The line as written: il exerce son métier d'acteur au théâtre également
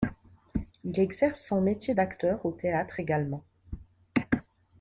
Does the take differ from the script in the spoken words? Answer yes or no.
no